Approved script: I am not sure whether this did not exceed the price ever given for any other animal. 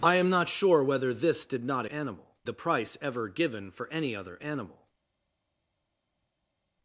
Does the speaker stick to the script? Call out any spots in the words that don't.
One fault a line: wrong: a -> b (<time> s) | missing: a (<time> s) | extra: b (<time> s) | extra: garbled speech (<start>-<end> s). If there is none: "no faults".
wrong: exceed -> animal (1.9 s)